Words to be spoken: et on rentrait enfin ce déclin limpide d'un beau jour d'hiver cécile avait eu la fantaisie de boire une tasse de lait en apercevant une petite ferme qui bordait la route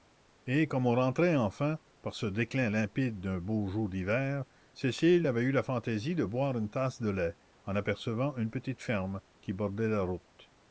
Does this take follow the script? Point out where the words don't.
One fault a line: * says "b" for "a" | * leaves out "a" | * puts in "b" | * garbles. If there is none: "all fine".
* puts in "comme"
* puts in "par"